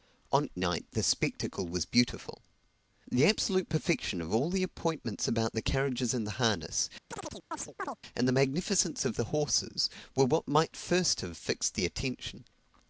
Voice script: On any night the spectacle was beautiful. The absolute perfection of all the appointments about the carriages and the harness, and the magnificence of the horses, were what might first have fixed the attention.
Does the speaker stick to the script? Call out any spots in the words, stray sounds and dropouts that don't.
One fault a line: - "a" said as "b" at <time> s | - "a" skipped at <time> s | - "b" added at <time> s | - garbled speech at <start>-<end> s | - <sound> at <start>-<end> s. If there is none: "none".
- "any" skipped at 0.5 s
- chirp at 7.1-8.0 s